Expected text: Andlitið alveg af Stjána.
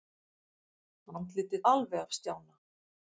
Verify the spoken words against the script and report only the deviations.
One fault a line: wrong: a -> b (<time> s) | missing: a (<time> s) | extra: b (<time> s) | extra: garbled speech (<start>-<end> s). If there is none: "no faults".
no faults